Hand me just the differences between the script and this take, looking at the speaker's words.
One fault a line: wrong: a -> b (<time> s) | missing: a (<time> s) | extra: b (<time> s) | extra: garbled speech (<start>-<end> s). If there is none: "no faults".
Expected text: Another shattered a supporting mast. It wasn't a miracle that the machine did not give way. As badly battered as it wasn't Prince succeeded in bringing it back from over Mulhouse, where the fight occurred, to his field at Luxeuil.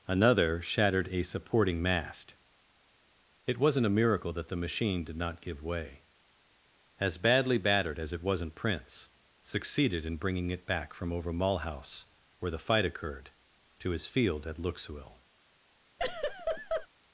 no faults